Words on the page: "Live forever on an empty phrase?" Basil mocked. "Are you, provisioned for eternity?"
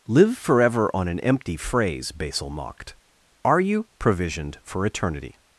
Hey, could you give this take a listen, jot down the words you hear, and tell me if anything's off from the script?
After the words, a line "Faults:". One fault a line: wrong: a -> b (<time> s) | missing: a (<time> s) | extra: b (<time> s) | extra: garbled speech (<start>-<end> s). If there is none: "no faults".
"Live forever on an empty phrase?" Basil mocked. "Are you, provisioned for eternity?"
Faults:
no faults